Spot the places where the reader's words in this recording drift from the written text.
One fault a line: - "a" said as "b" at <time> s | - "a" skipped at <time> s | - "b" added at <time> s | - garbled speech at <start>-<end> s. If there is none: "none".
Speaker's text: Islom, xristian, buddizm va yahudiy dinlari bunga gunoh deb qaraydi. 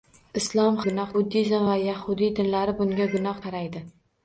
- "xristian" said as "gunoh" at 0.9 s
- "deb" skipped at 3.4 s